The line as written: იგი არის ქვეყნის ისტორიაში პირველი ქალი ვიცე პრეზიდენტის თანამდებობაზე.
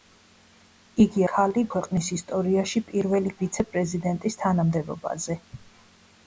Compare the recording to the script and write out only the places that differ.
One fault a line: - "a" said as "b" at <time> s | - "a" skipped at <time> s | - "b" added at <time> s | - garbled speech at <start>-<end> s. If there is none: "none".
- "არის" said as "ქალი" at 1.3 s
- "ქალი" skipped at 3.3 s